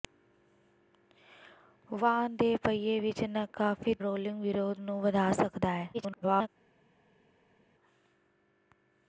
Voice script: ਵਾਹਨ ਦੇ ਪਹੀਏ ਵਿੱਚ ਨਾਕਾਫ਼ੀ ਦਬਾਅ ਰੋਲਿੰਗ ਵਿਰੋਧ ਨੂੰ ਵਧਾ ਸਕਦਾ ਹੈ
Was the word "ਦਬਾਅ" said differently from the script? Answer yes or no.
yes